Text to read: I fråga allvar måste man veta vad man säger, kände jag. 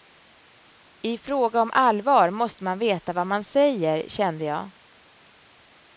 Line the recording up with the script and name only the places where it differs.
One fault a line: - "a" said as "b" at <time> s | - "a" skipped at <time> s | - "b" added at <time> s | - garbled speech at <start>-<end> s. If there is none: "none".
- "om" added at 1.6 s